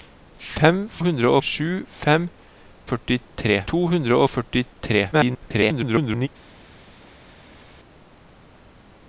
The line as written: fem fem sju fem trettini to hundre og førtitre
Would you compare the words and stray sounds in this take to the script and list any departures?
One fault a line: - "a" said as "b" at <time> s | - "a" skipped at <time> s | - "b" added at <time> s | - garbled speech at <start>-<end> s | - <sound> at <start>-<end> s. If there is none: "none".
- "fem" said as "hundre" at 1.1 s
- "trettini" said as "førtitre" at 2.9 s
- garbled speech at 5.1-6.3 s